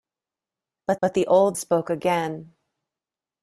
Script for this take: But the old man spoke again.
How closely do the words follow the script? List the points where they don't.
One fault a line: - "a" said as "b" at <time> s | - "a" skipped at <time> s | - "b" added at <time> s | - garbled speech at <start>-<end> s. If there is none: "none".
- "but" added at 1.0 s
- "man" skipped at 1.6 s